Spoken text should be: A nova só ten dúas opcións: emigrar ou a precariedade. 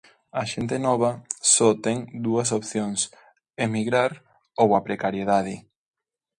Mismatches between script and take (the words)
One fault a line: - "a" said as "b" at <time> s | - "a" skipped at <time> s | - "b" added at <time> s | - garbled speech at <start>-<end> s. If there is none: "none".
- "xente" added at 0.5 s